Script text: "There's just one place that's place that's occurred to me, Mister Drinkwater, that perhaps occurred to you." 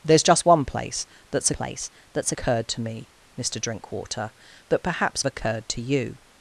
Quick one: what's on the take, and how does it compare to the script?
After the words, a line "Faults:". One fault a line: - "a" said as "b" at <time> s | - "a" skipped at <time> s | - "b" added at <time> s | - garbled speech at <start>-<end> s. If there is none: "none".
"There's just one place that's place that's occurred to me, Mister Drinkwater, that perhaps occurred to you."
Faults:
none